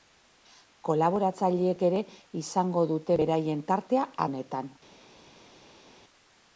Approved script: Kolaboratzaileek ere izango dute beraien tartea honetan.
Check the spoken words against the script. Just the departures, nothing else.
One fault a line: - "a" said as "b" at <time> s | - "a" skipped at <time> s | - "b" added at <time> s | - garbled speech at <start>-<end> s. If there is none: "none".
none